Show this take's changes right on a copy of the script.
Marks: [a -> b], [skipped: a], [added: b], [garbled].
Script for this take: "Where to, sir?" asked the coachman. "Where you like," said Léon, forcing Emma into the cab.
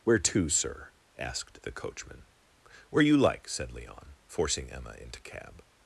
"Where to, sir?" asked the coachman. "Where you like," said Léon, forcing Emma into [skipped: the] cab.